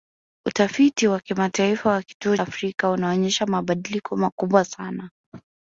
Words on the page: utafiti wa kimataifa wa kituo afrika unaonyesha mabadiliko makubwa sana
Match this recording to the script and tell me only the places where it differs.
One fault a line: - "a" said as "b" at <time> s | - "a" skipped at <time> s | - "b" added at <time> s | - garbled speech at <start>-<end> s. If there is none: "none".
none